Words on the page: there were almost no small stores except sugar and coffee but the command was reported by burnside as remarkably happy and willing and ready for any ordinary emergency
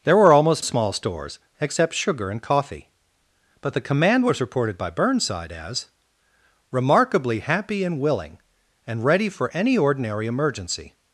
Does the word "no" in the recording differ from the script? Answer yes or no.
yes